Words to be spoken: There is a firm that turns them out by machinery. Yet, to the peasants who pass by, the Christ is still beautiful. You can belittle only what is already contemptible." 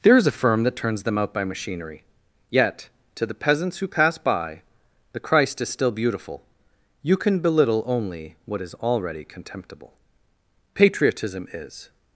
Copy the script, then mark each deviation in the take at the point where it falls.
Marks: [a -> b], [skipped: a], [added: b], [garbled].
There is a firm that turns them out by machinery. Yet, to the peasants who pass by, the Christ is still beautiful. You can belittle only what is already contemptible." [added: Patriotism is]